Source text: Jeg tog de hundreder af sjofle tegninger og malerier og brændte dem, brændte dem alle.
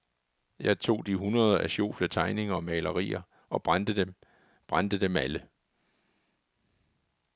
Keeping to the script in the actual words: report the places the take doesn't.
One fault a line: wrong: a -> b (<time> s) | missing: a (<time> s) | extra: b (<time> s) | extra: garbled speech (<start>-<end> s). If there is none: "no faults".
no faults